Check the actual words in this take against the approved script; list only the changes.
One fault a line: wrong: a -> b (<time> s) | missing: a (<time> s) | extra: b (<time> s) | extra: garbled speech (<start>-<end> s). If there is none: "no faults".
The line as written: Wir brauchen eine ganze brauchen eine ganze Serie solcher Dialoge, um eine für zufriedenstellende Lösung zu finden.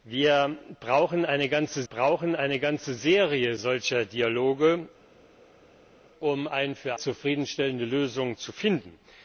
no faults